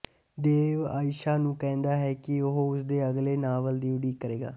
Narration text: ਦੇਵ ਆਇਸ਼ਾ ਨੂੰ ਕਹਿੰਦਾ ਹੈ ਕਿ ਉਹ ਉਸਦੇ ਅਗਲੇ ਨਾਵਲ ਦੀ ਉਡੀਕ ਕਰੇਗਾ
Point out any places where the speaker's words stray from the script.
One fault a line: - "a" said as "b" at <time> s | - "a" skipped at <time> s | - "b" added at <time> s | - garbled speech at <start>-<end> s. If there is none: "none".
none